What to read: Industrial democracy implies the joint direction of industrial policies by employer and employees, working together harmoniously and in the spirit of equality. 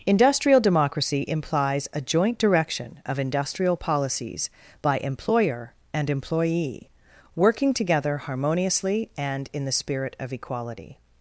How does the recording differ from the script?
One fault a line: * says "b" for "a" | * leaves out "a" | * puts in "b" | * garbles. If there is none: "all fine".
* says "a" for "the"
* says "employee" for "employees"